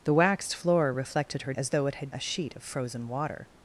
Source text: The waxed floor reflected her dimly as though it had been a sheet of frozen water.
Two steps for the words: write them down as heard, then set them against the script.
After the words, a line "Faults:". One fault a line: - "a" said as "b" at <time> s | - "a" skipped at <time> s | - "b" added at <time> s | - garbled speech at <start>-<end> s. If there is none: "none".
The waxed floor reflected her as though it had a sheet of frozen water.
Faults:
- "dimly" skipped at 1.5 s
- "been" skipped at 2.1 s